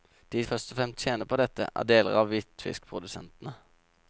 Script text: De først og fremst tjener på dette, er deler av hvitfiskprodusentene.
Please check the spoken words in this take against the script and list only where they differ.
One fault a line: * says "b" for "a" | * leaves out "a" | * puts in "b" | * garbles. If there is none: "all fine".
all fine